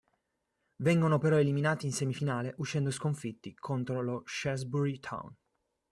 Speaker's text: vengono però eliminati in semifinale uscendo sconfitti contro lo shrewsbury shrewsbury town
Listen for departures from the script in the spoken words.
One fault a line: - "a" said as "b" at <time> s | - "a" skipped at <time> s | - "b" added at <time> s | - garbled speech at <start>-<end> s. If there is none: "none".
- "shrewsbury" skipped at 5.0 s